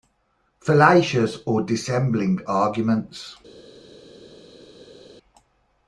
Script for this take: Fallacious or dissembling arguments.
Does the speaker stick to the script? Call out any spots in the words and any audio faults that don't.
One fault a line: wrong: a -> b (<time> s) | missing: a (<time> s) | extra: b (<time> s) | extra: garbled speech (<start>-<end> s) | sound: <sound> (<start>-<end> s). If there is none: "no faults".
no faults